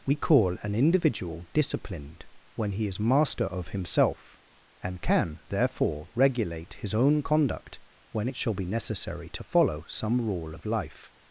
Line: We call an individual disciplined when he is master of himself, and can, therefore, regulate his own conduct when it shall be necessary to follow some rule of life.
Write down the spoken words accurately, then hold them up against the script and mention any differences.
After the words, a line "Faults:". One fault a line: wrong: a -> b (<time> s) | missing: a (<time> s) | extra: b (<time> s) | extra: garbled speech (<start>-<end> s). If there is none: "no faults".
We call an individual disciplined when he is master of himself, and can, therefore, regulate his own conduct when it shall be necessary to follow some rule of life.
Faults:
no faults